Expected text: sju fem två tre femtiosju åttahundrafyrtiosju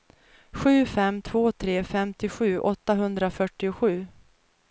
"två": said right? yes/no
yes